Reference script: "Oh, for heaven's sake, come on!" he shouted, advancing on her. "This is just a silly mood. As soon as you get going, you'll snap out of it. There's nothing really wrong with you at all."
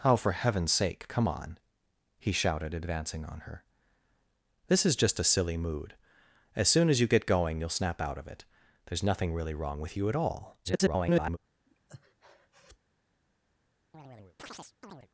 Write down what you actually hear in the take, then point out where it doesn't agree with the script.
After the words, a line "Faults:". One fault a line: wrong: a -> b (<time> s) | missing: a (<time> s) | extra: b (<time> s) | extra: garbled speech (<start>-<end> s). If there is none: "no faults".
"Oh, for heaven's sake, come on!" he shouted, advancing on her. "This is just a silly mood. As soon as you get going, you'll snap out of it. There's nothing really wrong with you at all." [garbled]
Faults:
extra: garbled speech (10.6-11.4 s)